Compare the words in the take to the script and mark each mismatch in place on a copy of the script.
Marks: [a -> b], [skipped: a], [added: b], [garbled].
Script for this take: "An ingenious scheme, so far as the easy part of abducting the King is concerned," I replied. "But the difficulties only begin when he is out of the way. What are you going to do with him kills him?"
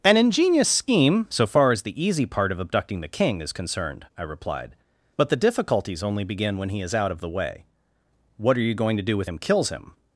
"An ingenious scheme, so far as the easy part of abducting the King is concerned," I replied. "But the difficulties only begin when he is out of the way. What are you going to do with him kills him?"